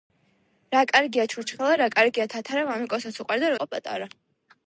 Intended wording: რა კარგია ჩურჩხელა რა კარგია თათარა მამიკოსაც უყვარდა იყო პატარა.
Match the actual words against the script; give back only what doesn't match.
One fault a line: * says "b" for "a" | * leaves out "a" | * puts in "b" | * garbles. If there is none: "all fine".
all fine